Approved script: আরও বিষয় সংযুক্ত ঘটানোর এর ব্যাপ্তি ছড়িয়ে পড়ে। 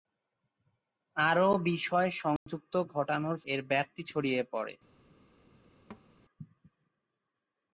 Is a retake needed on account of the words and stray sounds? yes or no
yes